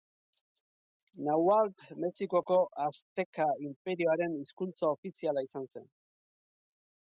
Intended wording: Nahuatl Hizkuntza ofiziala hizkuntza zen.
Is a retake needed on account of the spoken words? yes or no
yes